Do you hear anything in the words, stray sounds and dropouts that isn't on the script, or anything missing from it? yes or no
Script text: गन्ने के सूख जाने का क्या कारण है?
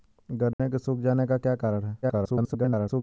yes